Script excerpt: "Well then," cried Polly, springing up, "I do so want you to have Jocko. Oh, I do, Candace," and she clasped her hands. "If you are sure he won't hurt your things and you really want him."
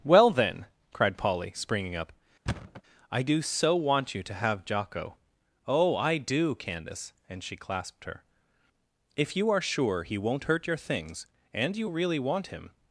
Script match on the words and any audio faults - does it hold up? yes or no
no